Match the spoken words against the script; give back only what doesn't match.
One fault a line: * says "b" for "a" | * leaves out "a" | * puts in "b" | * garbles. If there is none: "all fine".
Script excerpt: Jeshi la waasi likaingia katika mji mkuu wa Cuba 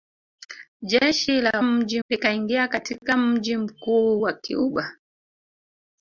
* says "mji" for "waasi"